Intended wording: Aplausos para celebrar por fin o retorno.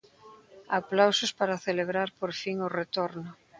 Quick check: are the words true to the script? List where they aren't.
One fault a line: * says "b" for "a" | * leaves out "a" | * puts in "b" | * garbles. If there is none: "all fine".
all fine